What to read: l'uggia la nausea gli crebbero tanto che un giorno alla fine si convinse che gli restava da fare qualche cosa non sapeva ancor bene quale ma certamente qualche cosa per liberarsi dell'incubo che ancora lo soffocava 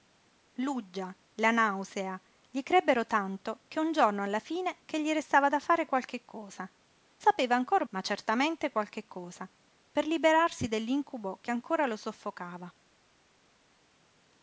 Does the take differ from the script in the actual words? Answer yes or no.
yes